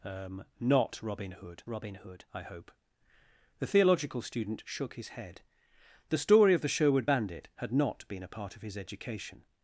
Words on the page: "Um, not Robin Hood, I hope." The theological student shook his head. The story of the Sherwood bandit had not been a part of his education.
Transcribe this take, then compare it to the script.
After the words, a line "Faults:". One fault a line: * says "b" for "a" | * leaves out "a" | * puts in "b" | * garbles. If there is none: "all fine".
"Um, not Robin Hood Robin Hood, I hope." The theological student shook his head. The story of the Sherwood bandit had not been a part of his education.
Faults:
* puts in "Robin Hood"